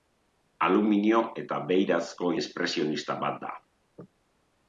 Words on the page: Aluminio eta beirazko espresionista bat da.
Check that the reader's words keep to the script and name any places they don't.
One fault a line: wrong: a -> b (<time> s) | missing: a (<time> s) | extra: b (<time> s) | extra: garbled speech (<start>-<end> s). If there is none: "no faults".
no faults